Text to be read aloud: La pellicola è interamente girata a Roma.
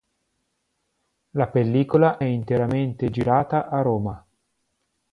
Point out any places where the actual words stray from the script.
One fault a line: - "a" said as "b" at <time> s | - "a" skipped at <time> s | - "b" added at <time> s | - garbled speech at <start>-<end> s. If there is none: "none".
- "è" skipped at 2.2 s